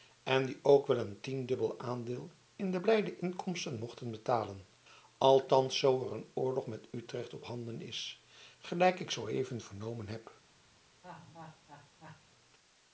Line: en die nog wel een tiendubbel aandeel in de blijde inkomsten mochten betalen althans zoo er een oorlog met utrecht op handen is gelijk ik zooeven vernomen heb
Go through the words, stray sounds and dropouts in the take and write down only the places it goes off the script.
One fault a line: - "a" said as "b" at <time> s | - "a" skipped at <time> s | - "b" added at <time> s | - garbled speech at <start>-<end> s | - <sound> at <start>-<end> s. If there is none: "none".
- "nog" said as "ook" at 0.6 s
- laugh at 11.0-12.2 s